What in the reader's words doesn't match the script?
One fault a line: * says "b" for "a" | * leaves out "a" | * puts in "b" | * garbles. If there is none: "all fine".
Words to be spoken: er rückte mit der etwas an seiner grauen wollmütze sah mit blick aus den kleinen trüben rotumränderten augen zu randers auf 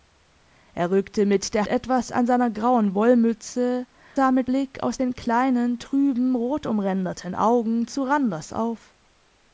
all fine